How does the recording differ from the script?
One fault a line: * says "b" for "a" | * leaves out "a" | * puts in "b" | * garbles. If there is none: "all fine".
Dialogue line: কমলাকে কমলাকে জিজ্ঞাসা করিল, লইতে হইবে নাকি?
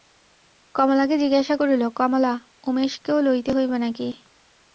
* leaves out "কমলাকে"
* puts in "কমলা উমেশকেও"